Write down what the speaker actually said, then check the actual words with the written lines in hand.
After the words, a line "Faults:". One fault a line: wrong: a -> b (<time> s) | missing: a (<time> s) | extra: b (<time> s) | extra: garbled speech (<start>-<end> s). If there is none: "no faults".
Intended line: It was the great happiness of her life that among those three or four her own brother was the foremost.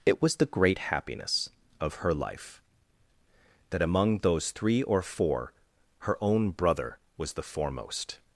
It was the great happiness of her life that among those three or four her own brother was the foremost.
Faults:
no faults